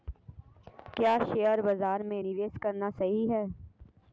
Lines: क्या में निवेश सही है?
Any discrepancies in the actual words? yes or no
yes